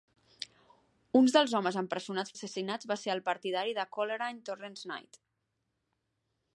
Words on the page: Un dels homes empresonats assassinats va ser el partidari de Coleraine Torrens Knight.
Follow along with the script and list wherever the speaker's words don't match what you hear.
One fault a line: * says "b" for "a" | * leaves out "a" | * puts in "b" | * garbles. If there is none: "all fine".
all fine